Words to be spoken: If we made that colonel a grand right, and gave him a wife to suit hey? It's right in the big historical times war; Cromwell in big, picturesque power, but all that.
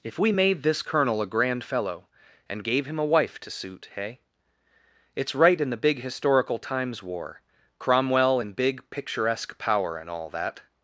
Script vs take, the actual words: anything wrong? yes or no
yes